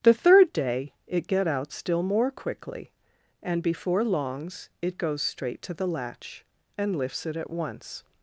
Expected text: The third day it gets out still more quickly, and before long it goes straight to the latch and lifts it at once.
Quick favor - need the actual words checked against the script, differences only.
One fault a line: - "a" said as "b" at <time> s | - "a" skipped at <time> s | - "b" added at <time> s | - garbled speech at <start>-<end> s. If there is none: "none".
- "gets" said as "get" at 1.3 s
- "long" said as "longs" at 4.0 s